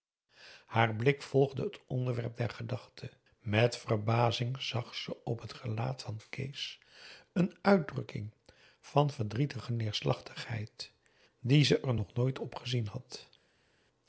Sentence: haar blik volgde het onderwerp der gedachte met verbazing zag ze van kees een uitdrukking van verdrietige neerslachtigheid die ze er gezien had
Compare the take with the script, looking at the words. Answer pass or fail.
fail